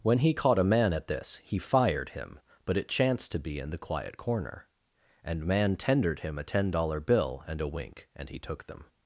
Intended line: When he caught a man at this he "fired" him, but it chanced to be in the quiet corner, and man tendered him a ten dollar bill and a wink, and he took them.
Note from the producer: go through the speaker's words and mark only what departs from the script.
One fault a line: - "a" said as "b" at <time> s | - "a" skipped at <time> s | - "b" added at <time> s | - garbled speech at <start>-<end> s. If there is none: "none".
none